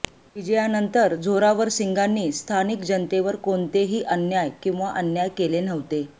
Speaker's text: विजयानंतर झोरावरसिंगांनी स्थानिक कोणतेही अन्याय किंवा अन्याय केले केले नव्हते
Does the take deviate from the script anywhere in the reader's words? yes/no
yes